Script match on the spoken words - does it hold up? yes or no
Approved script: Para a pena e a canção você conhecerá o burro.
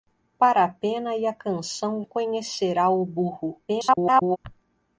no